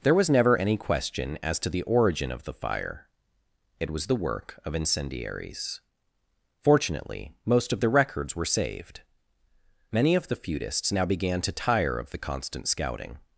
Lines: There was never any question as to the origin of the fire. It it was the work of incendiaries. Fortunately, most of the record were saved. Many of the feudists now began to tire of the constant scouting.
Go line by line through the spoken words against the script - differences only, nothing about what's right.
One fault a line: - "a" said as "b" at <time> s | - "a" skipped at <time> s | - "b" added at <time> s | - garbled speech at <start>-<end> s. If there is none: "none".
- "it" skipped at 3.9 s
- "record" said as "records" at 7.9 s